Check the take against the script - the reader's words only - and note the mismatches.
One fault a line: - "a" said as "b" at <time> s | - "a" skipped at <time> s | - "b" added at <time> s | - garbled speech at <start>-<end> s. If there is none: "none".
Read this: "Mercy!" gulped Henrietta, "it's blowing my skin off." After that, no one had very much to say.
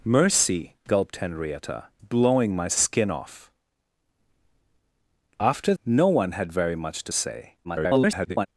- "it's" skipped at 1.9 s
- "that" skipped at 5.7 s
- garbled speech at 7.6-8.5 s